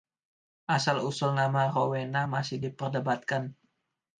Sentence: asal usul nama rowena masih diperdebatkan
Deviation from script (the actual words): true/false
false